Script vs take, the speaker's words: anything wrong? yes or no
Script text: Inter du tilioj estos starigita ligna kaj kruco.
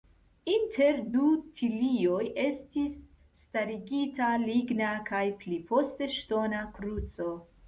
yes